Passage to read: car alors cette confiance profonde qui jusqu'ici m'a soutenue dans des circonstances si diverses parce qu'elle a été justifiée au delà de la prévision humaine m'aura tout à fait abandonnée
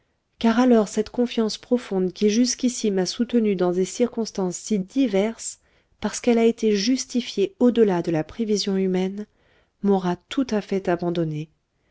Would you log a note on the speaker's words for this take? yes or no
no